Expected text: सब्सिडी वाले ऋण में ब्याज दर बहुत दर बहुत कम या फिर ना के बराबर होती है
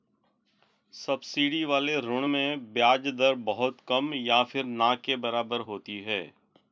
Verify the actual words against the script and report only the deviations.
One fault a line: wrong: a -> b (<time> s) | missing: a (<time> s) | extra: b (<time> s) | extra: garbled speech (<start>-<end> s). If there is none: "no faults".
missing: दर बहुत (3.8 s)